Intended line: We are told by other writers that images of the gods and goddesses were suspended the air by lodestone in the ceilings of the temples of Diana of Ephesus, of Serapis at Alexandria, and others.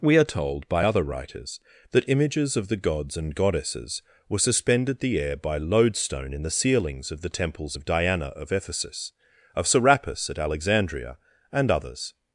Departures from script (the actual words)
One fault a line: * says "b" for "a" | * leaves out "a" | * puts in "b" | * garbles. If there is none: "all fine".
all fine